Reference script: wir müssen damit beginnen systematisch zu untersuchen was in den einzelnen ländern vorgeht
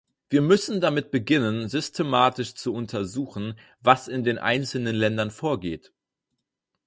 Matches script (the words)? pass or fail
pass